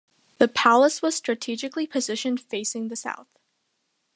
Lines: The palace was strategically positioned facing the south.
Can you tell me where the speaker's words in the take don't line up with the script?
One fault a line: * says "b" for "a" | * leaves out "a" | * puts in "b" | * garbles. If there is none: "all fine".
all fine